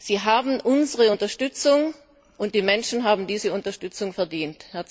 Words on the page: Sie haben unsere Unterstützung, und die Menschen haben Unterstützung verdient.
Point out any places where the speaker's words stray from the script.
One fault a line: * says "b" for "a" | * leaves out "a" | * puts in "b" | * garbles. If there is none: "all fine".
* puts in "diese"